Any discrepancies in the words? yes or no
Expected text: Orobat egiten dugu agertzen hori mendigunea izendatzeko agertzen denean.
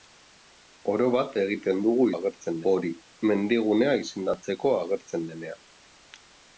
no